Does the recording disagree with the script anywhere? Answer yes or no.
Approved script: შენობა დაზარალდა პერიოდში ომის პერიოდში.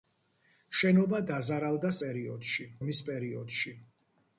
no